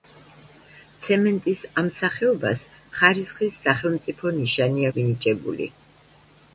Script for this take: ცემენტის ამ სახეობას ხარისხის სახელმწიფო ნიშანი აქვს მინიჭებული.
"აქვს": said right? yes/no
no